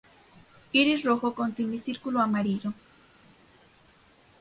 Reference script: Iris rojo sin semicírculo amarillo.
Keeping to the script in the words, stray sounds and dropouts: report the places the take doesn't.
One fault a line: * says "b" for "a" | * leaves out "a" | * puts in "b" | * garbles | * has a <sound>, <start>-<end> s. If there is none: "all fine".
* says "con" for "sin"